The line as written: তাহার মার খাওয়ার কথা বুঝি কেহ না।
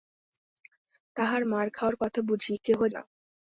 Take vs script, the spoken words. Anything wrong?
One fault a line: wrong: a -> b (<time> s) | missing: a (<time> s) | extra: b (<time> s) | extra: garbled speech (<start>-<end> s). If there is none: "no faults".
no faults